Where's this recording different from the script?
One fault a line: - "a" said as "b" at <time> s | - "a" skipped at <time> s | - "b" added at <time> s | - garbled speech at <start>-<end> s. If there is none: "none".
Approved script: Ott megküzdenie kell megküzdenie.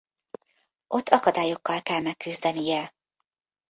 - "megküzdenie" said as "akadályokkal" at 1.1 s